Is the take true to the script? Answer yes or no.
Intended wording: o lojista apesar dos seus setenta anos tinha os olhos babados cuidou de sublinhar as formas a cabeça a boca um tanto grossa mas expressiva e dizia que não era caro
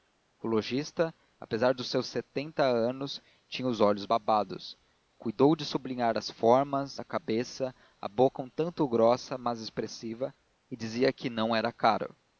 yes